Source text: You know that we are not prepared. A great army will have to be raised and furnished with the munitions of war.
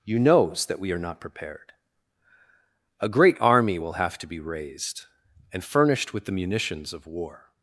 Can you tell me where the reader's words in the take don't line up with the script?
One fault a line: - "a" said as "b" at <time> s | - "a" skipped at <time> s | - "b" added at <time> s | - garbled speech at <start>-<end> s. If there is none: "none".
- "know" said as "knows" at 0.2 s